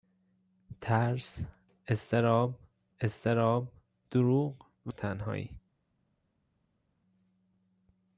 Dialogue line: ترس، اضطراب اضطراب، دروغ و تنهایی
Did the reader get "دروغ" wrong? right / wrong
right